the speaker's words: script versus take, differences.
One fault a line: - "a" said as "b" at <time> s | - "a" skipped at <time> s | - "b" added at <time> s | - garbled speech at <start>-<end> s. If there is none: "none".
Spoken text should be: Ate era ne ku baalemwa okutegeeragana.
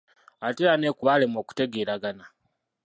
none